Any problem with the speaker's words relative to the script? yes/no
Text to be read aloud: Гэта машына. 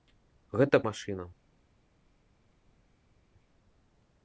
no